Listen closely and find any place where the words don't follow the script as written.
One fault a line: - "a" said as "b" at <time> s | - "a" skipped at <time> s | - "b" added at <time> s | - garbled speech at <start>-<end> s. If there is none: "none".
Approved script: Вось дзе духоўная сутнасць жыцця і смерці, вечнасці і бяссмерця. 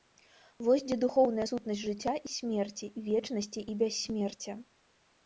none